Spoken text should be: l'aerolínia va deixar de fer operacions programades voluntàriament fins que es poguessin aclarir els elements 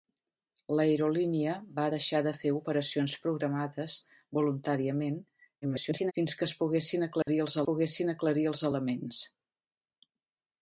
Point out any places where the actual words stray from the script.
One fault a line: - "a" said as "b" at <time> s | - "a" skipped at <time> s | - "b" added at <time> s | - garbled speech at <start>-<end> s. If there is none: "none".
- garbled speech at 5.6-6.1 s
- "poguessin aclarir els" added at 7.7 s